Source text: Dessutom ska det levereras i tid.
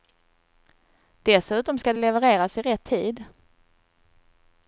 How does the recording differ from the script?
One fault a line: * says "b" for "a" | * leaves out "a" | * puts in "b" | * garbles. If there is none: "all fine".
* puts in "rätt"